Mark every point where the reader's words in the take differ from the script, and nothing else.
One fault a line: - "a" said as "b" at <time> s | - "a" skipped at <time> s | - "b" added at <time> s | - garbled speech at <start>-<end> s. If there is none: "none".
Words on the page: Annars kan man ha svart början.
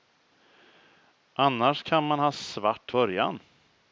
none